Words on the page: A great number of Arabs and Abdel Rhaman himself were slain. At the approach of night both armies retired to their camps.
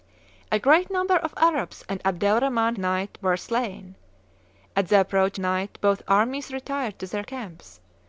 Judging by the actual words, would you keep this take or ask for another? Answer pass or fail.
fail